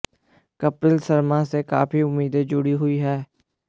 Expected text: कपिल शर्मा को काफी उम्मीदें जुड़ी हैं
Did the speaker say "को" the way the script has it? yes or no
no